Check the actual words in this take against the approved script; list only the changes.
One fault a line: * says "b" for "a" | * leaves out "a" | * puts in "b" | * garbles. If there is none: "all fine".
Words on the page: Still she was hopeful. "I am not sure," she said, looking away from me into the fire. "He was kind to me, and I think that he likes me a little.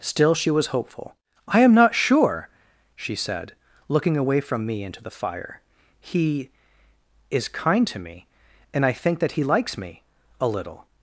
* says "is" for "was"